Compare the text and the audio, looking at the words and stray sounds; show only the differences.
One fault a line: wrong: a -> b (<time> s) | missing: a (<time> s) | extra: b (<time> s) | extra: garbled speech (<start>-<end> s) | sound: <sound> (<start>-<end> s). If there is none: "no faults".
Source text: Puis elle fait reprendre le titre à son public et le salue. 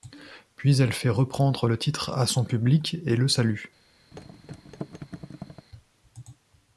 sound: thud (4.1-5.7 s)